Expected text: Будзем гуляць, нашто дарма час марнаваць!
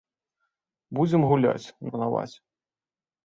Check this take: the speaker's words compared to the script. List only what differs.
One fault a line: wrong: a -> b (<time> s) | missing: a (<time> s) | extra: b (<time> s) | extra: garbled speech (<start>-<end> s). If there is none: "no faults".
missing: нашто дарма час (1.7 s)